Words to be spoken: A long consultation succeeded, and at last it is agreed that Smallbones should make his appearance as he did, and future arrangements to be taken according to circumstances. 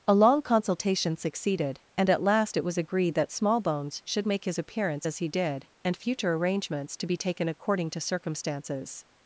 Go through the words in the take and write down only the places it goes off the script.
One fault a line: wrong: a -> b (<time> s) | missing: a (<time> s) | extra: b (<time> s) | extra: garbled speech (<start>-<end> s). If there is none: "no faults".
wrong: is -> was (2.6 s)